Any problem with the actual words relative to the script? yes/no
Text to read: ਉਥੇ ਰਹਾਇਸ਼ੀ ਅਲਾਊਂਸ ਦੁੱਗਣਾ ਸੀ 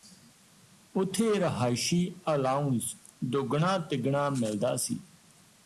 yes